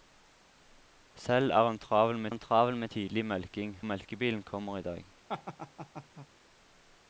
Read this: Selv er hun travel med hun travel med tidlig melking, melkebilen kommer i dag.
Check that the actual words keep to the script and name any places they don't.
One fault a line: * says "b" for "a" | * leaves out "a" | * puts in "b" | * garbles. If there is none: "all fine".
all fine